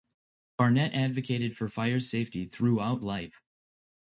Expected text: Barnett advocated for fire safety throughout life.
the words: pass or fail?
pass